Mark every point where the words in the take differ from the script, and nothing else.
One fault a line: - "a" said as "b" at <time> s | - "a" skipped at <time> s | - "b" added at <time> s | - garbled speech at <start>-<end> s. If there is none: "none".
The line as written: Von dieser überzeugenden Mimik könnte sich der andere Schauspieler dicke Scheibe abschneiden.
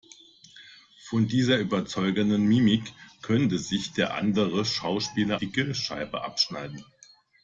none